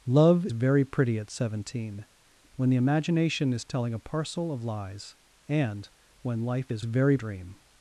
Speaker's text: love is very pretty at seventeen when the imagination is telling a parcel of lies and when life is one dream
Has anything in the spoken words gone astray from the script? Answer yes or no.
yes